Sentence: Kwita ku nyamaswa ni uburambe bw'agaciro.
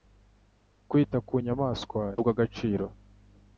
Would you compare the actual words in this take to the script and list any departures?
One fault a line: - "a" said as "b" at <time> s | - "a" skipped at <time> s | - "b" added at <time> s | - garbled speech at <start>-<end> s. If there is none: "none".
- "ni uburambe" skipped at 2.0 s